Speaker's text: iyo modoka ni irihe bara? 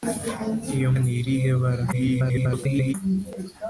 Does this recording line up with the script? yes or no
no